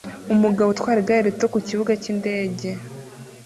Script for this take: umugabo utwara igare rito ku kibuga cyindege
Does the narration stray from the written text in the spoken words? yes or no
no